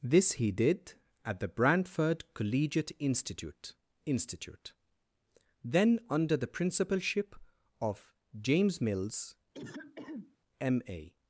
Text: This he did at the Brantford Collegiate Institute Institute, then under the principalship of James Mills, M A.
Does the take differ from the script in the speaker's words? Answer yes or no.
no